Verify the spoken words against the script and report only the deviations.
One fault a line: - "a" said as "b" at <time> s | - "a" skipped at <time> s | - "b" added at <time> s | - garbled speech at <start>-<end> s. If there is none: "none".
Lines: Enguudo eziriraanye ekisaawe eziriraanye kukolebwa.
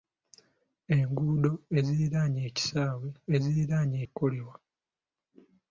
none